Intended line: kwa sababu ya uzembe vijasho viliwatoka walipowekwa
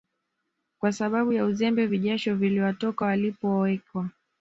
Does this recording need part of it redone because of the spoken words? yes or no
no